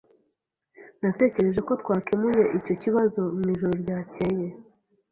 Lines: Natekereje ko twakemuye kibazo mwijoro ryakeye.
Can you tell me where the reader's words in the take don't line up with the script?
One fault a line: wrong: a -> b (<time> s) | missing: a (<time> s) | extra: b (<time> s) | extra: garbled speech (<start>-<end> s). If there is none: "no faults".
extra: icyo (2.6 s)